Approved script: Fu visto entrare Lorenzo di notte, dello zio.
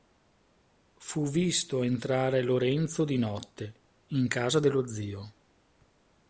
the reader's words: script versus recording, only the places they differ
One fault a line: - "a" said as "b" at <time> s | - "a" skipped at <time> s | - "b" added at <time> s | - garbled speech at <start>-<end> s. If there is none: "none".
- "in casa" added at 4.1 s